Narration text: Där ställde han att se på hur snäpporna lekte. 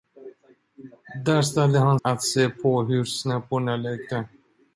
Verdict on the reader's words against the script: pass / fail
pass